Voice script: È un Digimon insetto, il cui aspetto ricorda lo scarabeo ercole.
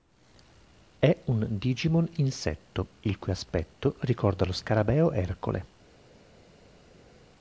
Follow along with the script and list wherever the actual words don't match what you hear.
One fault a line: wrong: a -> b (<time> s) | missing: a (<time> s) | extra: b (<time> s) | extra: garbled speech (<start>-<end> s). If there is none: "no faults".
no faults